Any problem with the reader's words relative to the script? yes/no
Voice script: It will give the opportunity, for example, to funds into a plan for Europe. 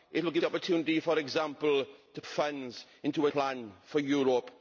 no